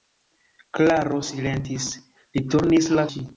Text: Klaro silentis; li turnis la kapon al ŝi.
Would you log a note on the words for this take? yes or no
yes